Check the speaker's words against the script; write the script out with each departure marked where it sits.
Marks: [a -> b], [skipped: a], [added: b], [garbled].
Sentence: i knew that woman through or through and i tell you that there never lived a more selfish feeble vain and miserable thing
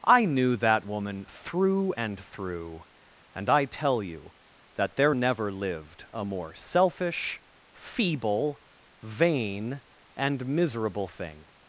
i knew that woman through [or -> and] through and i tell you that there never lived a more selfish feeble vain and miserable thing